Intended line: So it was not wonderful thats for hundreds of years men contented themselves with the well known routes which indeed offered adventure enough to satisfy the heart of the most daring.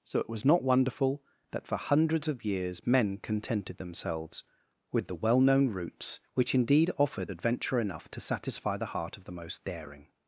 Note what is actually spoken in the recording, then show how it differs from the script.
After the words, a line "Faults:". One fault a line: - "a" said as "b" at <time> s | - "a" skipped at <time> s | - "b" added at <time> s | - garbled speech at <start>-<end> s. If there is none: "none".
So it was not wonderful that for hundreds of years men contented themselves with the well known routes which indeed offered adventure enough to satisfy the heart of the most daring.
Faults:
- "thats" said as "that" at 1.5 s